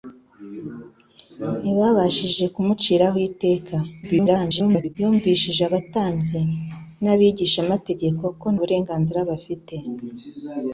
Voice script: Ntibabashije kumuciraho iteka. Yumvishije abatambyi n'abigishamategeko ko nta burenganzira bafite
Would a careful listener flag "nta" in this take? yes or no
yes